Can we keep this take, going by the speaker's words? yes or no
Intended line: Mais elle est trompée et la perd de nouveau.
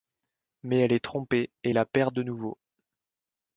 yes